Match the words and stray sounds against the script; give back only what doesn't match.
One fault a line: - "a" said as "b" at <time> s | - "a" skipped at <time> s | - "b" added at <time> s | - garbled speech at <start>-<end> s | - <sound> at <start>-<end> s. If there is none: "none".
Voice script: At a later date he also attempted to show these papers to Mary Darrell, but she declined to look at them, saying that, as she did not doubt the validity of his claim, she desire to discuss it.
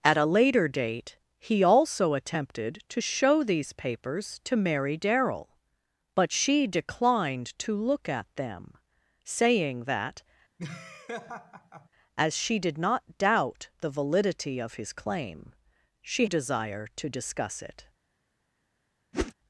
- laugh at 10.6-11.9 s
- whoosh at 19.1-19.3 s